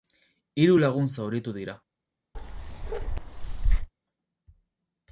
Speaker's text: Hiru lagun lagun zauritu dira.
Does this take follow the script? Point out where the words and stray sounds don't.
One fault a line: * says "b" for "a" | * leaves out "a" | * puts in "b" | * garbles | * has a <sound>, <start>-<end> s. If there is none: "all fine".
* leaves out "lagun"
* has a bark, 2.3-3.9 s